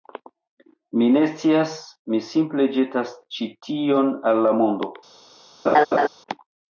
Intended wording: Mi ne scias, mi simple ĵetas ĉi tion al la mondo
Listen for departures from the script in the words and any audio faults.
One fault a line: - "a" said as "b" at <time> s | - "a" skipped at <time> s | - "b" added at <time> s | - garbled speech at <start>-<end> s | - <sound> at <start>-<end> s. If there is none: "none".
- laugh at 5.7-6.1 s